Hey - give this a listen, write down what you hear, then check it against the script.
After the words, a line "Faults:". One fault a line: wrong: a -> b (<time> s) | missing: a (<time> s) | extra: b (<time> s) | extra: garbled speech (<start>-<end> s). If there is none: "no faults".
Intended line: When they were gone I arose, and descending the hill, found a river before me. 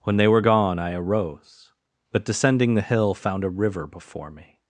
When they were gone I arose, but descending the hill, found a river before me.
Faults:
wrong: and -> but (2.1 s)